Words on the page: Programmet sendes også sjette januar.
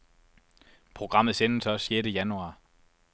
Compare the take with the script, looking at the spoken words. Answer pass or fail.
pass